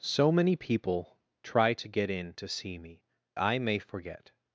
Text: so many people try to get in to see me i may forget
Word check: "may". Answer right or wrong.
right